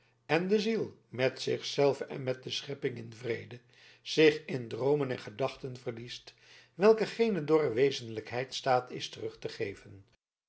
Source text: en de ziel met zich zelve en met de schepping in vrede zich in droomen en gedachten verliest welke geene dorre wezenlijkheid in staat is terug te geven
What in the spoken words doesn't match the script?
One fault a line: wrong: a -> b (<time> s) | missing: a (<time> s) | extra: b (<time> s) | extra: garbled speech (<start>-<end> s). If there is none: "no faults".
missing: in (8.5 s)